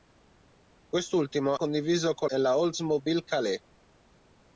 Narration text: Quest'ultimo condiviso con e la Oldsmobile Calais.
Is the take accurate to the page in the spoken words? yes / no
yes